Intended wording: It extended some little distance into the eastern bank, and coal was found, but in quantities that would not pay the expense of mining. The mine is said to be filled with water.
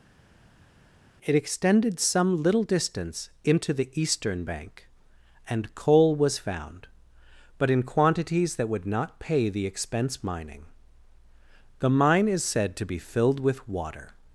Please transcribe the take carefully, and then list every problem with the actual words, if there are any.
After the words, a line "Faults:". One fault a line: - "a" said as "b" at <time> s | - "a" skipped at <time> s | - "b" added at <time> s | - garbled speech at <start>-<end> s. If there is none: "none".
It extended some little distance into the eastern bank, and coal was found, but in quantities that would not pay the expense mining. The mine is said to be filled with water.
Faults:
- "of" skipped at 10.2 s